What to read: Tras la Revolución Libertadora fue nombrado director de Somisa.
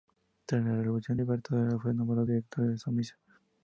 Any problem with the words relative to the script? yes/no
no